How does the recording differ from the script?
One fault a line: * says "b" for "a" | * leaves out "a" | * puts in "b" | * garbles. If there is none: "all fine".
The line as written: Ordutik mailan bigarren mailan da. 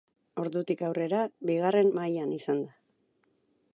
* says "aurrera" for "mailan"
* puts in "izan"